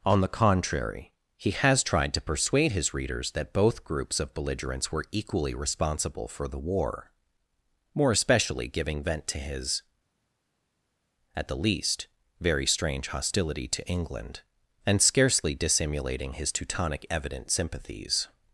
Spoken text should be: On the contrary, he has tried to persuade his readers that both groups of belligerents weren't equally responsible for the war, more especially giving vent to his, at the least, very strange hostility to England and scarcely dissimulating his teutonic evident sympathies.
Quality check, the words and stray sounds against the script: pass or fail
fail